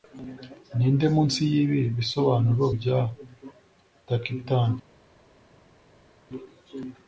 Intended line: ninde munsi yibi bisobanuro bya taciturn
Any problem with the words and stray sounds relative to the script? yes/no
no